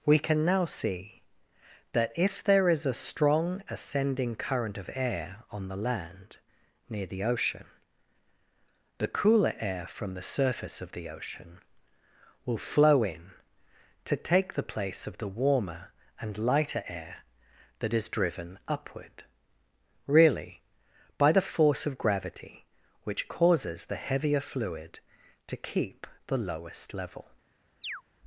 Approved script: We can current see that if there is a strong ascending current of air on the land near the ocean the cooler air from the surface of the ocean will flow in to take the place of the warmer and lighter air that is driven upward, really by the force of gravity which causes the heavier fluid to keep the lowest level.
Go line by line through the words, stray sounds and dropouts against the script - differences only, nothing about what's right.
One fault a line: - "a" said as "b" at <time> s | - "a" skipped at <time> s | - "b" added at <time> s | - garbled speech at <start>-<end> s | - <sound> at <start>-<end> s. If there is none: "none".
- "current" said as "now" at 0.4 s
- chirp at 27.8-28.0 s